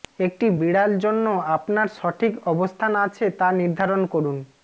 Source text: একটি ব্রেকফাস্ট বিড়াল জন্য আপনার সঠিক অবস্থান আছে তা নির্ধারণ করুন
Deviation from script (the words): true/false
true